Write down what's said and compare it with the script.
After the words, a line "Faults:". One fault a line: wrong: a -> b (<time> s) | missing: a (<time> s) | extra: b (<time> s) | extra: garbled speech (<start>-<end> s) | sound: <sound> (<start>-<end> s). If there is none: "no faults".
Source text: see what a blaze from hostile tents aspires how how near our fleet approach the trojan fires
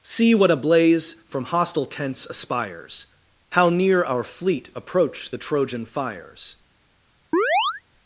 see what a blaze from hostile tents aspires how near our fleet approach the trojan fires
Faults:
missing: how (3.7 s)
sound: chirp (7.3-7.8 s)